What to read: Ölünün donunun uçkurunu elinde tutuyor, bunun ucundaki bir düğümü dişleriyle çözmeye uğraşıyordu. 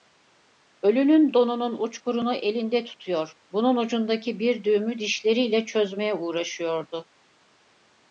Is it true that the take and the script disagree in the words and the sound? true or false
false